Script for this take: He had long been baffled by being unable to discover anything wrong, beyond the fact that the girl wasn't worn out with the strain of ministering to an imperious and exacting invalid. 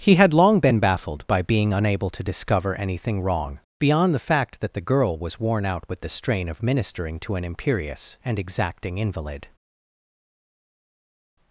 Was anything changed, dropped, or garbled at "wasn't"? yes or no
yes